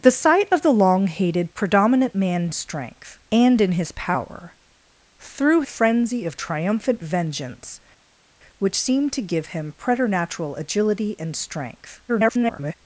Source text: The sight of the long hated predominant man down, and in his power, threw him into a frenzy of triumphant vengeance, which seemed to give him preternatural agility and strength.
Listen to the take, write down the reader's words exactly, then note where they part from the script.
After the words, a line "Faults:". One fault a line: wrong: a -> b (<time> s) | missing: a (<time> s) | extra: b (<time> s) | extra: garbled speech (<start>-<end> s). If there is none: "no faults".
The sight of the long hated predominant man strength, and in his power, threw a frenzy of triumphant vengeance, which seemed to give him preternatural agility and strength. [garbled]
Faults:
wrong: down -> strength (2.5 s)
missing: him into (5.6 s)
extra: garbled speech (12.1-12.7 s)